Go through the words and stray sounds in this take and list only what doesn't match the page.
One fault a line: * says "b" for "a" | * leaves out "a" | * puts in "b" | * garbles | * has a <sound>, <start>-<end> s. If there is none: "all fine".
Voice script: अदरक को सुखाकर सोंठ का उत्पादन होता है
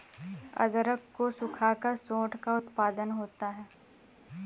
all fine